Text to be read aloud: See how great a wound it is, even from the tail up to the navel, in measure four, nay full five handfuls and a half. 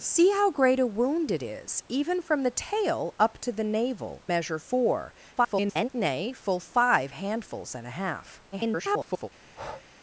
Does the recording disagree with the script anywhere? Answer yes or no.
yes